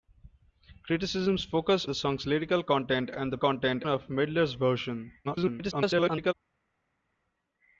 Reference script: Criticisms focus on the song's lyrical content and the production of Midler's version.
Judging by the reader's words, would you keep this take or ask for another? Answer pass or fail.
fail